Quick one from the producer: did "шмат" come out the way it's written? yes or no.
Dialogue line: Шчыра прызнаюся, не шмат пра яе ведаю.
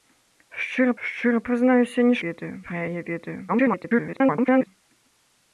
no